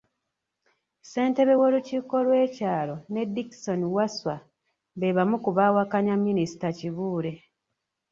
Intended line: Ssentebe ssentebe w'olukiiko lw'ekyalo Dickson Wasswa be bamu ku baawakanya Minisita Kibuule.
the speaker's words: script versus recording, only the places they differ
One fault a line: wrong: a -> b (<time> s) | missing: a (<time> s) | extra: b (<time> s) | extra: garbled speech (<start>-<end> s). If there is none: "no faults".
missing: ssentebe (1.5 s)
extra: ne (3.1 s)